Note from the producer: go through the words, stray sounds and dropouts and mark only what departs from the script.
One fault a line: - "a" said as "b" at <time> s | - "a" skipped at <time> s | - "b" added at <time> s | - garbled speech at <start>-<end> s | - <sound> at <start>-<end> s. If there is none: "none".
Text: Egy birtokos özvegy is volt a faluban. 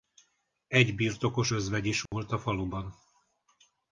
- dropout at 2.1-2.1 s